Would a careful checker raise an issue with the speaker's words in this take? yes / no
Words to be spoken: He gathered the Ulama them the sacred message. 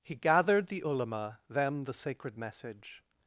no